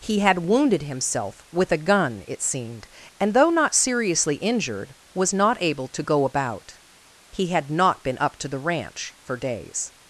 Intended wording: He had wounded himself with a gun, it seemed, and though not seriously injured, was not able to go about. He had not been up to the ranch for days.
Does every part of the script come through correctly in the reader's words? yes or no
yes